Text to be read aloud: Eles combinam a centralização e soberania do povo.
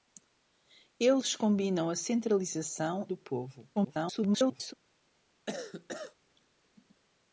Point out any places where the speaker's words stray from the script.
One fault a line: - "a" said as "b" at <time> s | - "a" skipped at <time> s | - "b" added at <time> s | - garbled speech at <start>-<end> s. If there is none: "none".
- "e soberania" skipped at 3.0 s
- garbled speech at 3.7-4.7 s